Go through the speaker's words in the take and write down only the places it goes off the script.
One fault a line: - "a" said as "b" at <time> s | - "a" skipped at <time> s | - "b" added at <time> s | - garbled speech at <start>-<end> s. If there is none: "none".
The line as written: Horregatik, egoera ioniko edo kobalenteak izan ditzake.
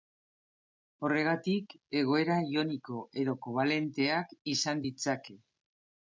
none